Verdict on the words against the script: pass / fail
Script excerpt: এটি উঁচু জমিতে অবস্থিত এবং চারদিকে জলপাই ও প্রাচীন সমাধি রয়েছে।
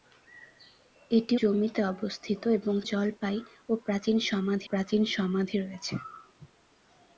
fail